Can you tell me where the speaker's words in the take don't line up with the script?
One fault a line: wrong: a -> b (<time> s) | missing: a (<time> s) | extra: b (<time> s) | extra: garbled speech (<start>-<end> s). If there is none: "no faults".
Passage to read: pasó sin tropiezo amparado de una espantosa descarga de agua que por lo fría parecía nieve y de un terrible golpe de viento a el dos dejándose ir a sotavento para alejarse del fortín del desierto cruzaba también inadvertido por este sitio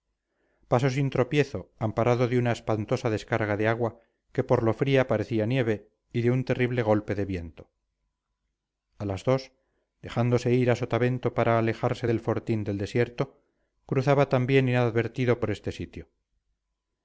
wrong: el -> las (9.1 s)